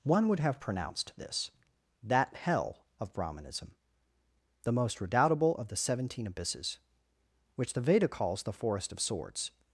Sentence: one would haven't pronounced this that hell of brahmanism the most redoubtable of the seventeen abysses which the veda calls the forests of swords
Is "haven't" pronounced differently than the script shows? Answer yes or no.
yes